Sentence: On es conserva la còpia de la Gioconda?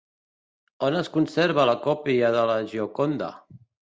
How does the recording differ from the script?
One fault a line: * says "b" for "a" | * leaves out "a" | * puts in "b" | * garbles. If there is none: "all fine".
all fine